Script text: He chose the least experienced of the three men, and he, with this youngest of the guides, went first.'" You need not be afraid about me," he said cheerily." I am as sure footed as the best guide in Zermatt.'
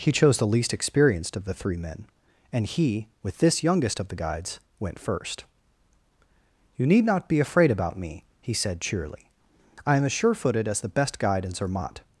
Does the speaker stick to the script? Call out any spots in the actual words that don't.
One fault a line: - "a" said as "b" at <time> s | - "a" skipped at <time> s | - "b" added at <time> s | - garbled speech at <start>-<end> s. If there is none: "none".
none